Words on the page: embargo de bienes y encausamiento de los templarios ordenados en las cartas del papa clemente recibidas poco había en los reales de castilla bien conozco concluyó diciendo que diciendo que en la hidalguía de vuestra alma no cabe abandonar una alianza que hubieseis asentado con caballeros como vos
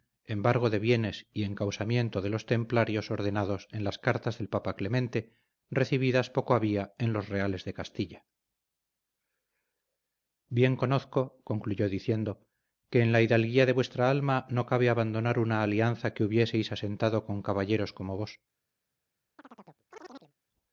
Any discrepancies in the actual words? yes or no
yes